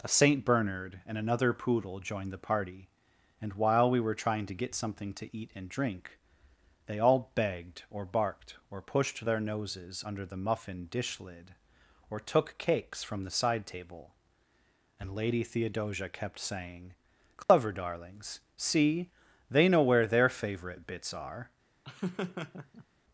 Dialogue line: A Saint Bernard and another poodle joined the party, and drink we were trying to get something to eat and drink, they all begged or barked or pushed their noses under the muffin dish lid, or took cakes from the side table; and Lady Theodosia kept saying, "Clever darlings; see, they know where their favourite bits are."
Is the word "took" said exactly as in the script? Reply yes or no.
yes